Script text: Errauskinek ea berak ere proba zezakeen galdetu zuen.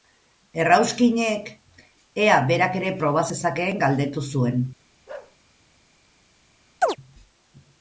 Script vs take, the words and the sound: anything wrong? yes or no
yes